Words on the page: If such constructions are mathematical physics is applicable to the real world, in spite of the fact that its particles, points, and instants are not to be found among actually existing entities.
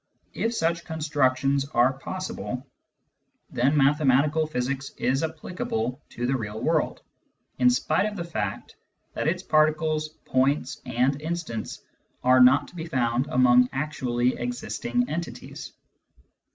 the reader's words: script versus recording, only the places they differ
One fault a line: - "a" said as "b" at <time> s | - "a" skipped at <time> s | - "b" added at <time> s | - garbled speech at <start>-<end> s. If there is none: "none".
- "possible then" added at 1.9 s